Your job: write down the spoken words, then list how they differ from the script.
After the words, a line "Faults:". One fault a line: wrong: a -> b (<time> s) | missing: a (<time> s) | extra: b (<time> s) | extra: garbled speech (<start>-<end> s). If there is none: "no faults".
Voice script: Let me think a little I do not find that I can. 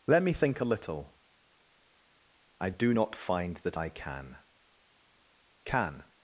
Let me think a little I do not find that I can can.
Faults:
extra: can (5.6 s)